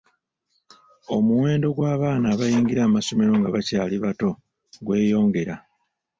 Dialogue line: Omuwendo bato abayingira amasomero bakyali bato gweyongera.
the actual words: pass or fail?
fail